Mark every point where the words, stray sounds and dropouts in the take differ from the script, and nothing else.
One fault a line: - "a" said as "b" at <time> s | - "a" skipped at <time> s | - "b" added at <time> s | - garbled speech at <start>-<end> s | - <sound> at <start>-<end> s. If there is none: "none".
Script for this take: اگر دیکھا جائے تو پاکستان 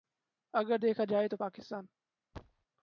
- thud at 2.3-2.7 s